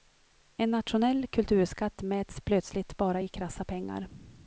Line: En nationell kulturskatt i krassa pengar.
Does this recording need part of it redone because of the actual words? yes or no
yes